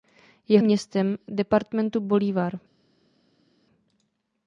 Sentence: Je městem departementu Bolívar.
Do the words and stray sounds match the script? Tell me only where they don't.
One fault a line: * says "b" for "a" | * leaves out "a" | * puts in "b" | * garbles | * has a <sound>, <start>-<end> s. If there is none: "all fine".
all fine